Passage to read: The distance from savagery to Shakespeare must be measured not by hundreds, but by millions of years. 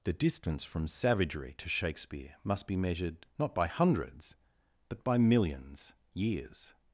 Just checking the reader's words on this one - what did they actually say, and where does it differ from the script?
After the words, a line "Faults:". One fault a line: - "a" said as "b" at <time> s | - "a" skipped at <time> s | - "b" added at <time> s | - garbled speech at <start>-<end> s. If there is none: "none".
The distance from savagery to Shakespeare must be measured not by hundreds, but by millions years.
Faults:
- "of" skipped at 5.9 s